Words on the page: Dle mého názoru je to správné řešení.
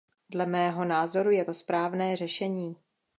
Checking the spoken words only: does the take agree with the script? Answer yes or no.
yes